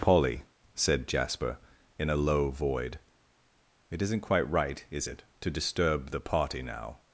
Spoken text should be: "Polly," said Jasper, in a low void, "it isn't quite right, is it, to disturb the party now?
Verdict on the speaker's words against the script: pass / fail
pass